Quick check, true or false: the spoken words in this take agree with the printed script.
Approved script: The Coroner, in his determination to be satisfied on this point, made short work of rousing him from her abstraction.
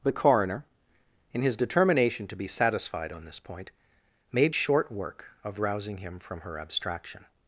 true